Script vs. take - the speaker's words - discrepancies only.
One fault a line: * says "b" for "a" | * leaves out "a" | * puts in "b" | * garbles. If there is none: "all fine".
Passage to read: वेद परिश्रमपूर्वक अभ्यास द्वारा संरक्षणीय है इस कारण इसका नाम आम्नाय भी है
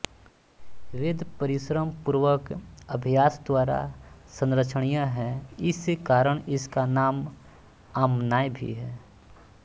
all fine